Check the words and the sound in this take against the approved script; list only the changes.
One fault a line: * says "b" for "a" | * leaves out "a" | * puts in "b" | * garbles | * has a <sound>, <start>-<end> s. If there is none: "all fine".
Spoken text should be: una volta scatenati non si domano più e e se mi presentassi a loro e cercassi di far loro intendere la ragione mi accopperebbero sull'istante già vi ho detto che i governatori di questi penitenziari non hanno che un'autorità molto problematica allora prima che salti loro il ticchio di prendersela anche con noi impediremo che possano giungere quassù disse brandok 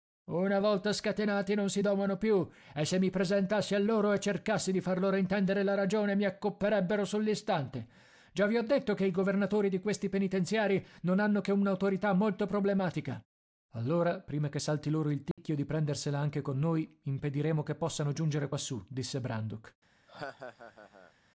* leaves out "e"
* has a dropout, 15.3-15.4 s
* has a laugh, 20.1-21.1 s